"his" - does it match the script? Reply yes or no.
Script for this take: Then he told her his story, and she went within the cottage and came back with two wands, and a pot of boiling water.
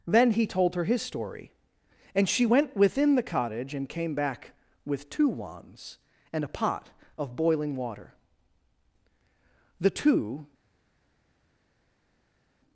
yes